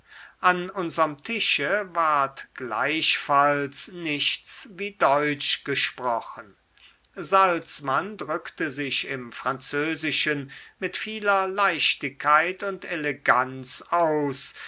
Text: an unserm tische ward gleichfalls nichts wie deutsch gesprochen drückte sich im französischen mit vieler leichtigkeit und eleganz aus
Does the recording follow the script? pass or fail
fail